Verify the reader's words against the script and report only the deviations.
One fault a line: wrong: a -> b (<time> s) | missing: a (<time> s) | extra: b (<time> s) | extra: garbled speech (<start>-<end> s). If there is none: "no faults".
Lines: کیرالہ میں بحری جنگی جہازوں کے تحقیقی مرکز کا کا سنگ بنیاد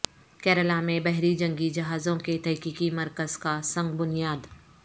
missing: کا (3.6 s)